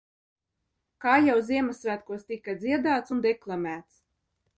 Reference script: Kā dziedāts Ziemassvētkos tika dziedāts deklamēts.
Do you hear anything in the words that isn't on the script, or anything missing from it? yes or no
yes